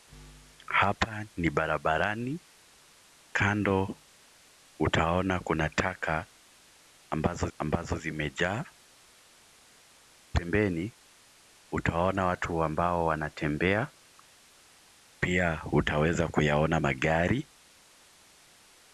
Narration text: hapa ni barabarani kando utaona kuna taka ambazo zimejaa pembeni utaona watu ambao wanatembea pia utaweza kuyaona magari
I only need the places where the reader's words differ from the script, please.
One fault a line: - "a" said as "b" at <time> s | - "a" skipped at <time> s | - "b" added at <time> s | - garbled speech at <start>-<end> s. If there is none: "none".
- "ambazo" added at 7.6 s